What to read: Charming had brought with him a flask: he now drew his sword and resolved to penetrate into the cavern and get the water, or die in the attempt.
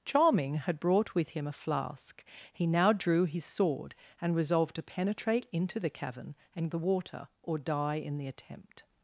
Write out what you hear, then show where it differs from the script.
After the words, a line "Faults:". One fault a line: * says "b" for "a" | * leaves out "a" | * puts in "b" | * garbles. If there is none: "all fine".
Charming had brought with him a flask: he now drew his sword and resolved to penetrate into the cavern and the water, or die in the attempt.
Faults:
* leaves out "get"